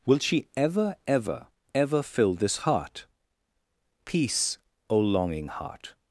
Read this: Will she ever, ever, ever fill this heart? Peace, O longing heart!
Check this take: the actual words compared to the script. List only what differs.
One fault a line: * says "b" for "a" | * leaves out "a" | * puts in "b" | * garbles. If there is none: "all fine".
all fine